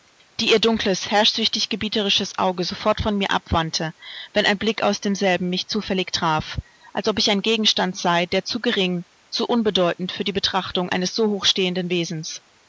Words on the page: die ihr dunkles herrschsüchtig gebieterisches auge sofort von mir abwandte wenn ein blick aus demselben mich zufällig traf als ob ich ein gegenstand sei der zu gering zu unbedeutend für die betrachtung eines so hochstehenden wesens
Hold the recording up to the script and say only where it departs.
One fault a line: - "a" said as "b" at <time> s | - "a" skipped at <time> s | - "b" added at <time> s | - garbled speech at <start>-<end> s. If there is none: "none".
none